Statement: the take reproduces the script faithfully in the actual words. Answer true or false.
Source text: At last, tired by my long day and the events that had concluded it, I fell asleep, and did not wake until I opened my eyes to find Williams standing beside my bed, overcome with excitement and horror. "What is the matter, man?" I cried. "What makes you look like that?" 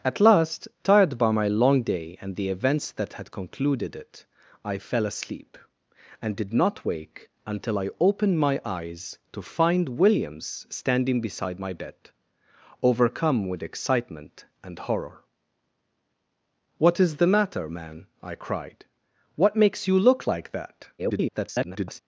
false